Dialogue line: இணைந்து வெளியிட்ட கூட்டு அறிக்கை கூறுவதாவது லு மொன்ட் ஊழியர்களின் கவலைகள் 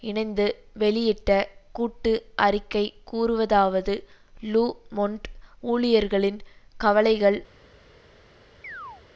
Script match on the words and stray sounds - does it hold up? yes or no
no